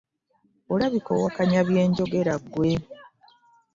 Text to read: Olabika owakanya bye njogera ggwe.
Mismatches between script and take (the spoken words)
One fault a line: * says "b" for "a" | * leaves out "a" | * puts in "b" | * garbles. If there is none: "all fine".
all fine